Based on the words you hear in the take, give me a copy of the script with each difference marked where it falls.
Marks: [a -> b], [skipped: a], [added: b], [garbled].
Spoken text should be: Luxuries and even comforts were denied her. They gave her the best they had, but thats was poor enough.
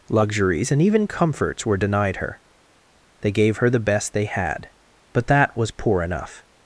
Luxuries and even comforts were denied her. They gave her the best they had, but [thats -> that] was poor enough.